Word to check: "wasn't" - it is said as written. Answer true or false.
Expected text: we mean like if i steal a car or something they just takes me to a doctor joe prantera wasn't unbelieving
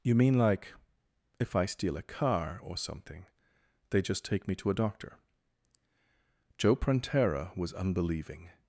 false